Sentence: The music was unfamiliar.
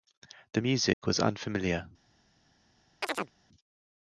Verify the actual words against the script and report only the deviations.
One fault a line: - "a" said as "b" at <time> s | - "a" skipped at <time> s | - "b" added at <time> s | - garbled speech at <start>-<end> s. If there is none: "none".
none